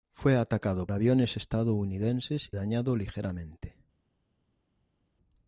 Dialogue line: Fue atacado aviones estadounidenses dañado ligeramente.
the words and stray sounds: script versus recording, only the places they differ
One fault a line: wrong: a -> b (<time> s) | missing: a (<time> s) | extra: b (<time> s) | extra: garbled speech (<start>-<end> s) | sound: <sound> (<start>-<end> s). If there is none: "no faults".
no faults